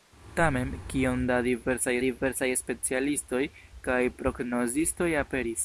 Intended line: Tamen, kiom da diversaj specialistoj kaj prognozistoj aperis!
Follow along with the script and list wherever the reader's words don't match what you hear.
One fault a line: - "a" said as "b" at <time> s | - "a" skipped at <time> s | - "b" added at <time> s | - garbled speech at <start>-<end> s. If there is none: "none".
- "diversaj" added at 2.0 s